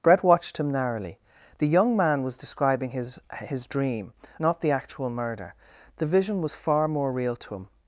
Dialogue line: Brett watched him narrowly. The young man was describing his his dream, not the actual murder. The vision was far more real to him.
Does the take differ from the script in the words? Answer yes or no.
no